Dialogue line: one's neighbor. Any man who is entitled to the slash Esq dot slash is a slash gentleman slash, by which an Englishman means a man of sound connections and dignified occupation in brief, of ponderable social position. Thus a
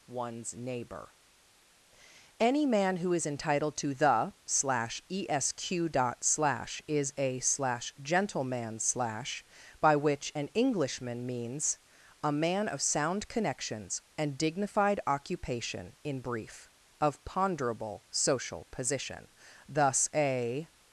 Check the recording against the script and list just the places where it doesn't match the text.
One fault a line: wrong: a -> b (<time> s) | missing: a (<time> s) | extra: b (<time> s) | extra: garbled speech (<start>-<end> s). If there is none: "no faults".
no faults